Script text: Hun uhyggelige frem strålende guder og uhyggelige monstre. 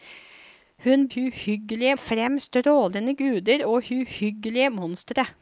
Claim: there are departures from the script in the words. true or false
false